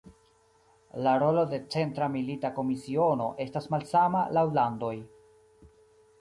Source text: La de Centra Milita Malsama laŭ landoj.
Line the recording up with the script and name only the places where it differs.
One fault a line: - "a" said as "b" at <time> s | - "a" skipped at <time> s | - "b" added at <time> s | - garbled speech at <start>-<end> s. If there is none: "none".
- "rolo" added at 1.2 s
- "Komisiono estas" added at 2.6 s